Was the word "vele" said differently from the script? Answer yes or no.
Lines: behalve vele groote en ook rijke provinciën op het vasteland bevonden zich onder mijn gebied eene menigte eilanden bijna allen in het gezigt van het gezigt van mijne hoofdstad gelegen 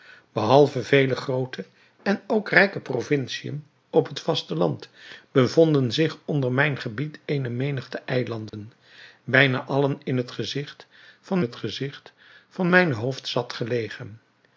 no